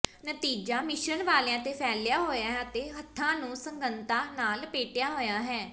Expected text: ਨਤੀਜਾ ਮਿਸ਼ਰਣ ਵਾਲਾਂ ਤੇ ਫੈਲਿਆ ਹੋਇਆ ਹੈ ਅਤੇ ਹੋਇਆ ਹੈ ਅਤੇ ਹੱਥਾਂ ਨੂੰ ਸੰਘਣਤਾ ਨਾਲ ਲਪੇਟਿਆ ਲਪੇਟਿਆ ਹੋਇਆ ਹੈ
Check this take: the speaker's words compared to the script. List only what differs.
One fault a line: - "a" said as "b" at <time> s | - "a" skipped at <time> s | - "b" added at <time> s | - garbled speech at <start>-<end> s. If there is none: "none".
- "ਹੋਇਆ ਹੈ ਅਤੇ" skipped at 2.9 s
- "ਲਪੇਟਿਆ" skipped at 5.1 s